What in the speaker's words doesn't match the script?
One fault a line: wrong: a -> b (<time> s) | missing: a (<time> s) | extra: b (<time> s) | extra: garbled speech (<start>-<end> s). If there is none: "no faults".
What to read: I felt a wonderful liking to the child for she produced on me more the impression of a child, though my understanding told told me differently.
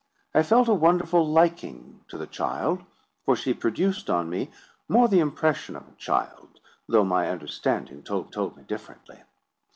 no faults